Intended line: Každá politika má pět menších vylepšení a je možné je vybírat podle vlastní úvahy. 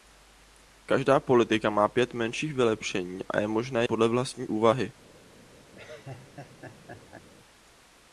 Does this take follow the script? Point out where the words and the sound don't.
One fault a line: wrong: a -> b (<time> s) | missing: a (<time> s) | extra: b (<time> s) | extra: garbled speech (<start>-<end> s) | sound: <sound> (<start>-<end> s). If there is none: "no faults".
missing: je vybírat (3.9 s)
sound: laugh (5.7-7.3 s)